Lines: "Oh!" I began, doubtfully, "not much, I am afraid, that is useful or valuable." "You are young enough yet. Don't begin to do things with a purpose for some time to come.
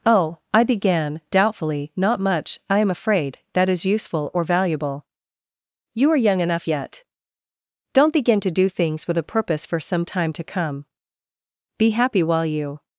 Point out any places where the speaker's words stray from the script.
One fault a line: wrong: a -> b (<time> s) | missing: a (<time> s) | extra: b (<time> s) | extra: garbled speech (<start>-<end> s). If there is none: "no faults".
extra: Be happy while you (11.8 s)